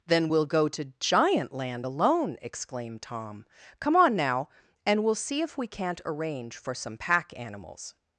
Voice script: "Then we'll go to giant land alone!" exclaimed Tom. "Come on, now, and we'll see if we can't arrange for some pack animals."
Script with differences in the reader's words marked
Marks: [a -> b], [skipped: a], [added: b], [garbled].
"Then we'll go to giant land alone!" exclaimed Tom. "Come on, now, and we'll see if we can't arrange for some pack animals."